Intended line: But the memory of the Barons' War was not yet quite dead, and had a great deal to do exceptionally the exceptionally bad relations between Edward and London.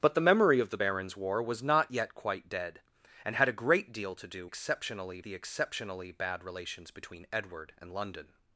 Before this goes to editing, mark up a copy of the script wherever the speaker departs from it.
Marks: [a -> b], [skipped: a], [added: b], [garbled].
But the memory of the Barons' War was not yet quite dead, and had a great deal to do exceptionally the exceptionally bad relations between Edward and London.